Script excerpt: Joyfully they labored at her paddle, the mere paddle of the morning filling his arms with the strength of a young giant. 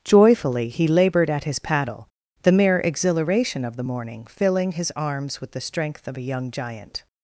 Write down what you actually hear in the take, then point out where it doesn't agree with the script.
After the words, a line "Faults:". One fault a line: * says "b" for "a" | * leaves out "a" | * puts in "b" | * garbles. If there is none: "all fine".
Joyfully he labored at his paddle, the mere exhilaration of the morning filling his arms with the strength of a young giant.
Faults:
* says "he" for "they"
* says "his" for "her"
* says "exhilaration" for "paddle"